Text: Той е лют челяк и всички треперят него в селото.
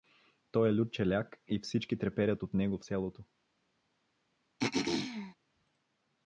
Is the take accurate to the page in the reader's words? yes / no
no